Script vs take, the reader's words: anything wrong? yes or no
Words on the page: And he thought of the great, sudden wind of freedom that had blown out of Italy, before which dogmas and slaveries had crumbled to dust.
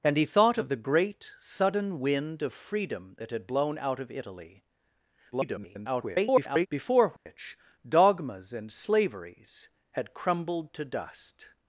yes